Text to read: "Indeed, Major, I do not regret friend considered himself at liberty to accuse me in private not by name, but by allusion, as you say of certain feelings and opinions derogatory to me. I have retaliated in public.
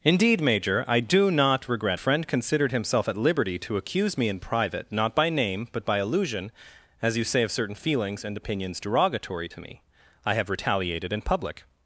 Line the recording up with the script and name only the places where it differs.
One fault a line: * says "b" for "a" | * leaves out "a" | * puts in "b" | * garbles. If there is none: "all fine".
all fine